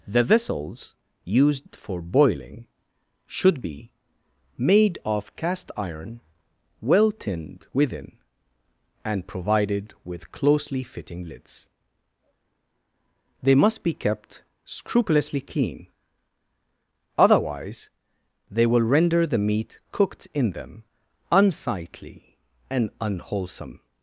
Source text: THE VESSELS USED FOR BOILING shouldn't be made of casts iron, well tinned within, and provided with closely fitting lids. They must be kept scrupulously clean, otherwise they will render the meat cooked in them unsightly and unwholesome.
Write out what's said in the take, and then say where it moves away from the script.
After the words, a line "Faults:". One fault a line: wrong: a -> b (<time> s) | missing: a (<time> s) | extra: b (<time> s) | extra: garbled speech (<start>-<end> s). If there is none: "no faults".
THE VESSELS USED FOR BOILING should be made of cast iron, well tinned within, and provided with closely fitting lids. They must be kept scrupulously clean, otherwise they will render the meat cooked in them unsightly and unwholesome.
Faults:
wrong: shouldn't -> should (3.3 s)
wrong: casts -> cast (5.3 s)